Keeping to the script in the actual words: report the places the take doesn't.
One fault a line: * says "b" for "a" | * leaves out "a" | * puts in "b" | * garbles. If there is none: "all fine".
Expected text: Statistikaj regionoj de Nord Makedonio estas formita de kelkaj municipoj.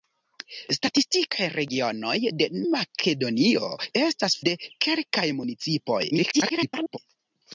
* leaves out "Nord"
* leaves out "formita"
* garbles